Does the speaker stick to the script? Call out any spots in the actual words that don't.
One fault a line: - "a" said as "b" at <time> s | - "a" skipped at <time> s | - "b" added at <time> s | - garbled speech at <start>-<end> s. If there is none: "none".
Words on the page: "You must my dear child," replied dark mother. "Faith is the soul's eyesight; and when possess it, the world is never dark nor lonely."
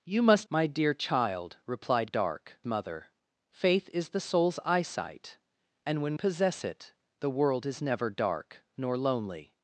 none